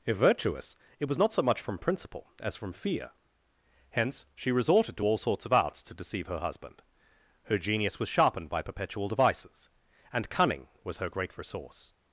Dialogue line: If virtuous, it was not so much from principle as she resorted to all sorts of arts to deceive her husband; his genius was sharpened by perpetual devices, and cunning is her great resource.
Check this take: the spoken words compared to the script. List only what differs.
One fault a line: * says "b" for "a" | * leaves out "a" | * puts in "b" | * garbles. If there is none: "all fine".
* puts in "from fear Hence"
* says "her" for "his"
* says "was" for "is"